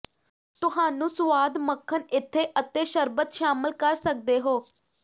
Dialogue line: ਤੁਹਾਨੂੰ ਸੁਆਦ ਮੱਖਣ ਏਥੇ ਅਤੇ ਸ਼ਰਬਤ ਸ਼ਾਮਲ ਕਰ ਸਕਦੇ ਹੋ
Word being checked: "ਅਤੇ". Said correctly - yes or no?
yes